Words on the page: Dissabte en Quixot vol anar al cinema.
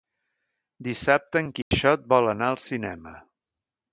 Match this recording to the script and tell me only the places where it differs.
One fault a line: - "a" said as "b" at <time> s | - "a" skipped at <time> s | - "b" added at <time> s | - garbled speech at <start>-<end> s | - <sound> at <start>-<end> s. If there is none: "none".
- dropout at 1.6-1.7 s